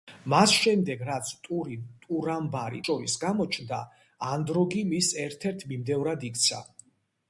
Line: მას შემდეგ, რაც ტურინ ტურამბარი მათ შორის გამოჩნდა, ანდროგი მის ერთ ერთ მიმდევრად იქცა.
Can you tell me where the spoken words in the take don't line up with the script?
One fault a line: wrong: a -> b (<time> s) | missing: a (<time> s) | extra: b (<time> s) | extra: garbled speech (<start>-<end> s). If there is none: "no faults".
missing: მათ (2.8 s)